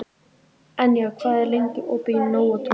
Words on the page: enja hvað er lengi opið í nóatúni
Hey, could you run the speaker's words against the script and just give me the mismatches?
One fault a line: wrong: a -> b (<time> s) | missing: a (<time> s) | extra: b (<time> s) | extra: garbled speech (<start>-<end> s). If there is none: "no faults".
no faults